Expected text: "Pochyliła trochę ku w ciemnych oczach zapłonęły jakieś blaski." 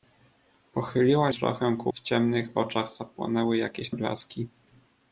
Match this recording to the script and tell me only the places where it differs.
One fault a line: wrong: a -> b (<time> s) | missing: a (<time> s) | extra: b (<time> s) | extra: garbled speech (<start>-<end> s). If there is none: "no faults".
no faults